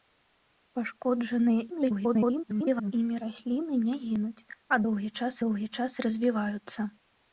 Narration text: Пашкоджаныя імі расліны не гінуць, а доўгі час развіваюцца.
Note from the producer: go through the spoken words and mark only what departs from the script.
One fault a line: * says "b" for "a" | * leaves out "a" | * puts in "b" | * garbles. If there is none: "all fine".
* garbles
* puts in "доўгі час"